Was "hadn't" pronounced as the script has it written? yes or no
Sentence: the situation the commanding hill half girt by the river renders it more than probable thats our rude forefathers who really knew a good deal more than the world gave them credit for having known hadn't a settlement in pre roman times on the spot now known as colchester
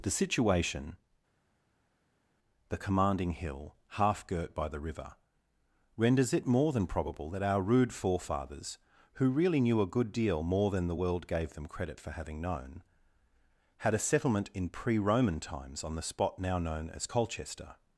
no